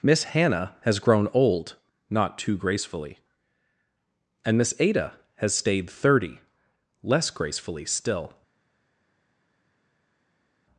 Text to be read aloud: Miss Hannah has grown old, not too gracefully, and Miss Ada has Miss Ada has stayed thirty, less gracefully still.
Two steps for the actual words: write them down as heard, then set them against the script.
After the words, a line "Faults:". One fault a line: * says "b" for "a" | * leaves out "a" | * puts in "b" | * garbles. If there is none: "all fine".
Miss Hannah has grown old, not too gracefully, and Miss Ada has stayed thirty, less gracefully still.
Faults:
* leaves out "Miss Ada has"